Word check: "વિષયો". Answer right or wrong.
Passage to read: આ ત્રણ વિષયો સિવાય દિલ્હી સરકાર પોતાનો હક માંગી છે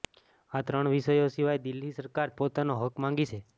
right